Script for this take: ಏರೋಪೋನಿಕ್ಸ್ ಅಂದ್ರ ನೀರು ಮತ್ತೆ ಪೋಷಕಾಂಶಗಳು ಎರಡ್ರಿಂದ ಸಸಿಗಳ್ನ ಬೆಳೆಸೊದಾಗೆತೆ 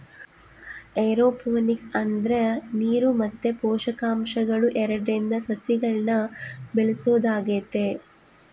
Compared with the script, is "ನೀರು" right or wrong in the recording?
right